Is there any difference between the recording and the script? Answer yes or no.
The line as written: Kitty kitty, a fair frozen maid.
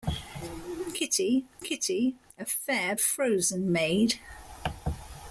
no